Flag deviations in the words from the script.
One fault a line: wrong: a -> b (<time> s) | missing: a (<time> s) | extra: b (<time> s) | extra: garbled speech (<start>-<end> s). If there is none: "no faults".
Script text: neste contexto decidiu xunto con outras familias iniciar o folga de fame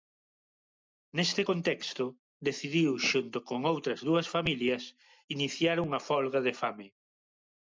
extra: dúas (4.1 s)
wrong: o -> unha (5.8 s)